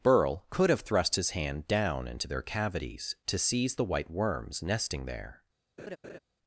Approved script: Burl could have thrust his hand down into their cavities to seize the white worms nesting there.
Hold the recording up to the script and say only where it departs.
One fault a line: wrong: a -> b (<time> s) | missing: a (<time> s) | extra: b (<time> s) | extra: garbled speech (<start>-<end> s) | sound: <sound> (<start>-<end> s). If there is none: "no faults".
sound: laugh (5.8-6.2 s)